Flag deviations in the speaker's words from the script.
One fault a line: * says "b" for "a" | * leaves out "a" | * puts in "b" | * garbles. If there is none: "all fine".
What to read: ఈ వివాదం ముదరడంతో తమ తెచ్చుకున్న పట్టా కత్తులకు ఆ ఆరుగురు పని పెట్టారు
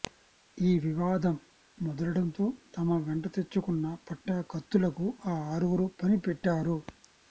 * puts in "వెంట"